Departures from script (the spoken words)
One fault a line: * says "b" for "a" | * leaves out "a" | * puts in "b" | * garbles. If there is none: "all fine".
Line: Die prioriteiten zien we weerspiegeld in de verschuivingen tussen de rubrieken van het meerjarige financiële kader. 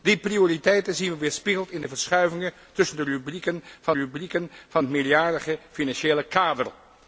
* puts in "rubrieken van"